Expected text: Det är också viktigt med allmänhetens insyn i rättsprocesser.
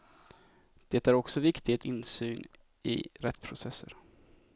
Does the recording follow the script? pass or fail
fail